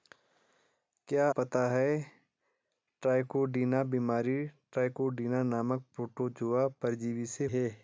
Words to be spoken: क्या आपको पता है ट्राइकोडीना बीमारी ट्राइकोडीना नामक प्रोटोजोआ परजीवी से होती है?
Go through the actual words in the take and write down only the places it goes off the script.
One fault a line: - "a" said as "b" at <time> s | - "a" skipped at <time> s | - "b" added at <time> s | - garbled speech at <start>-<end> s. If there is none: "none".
- "आपको" skipped at 1.3 s
- "होती" skipped at 7.5 s